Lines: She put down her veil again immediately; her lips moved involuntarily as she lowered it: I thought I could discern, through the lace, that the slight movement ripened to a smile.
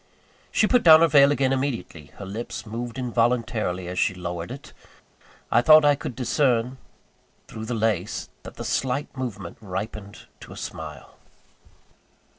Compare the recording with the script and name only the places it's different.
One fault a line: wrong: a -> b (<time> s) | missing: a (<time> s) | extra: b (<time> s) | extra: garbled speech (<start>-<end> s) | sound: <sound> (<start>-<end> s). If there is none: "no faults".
no faults